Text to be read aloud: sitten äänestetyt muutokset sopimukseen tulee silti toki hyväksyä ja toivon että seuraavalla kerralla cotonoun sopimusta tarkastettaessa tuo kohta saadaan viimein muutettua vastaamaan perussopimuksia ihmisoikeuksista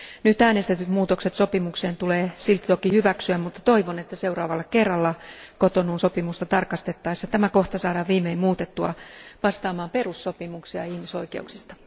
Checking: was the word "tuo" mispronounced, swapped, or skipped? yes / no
yes